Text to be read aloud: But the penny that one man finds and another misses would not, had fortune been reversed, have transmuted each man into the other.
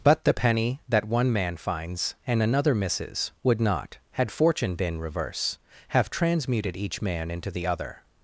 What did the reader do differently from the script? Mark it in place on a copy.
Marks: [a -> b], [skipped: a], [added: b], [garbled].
But the penny that one man finds and another misses would not, had fortune been [reversed, -> reverse] have transmuted each man into the other.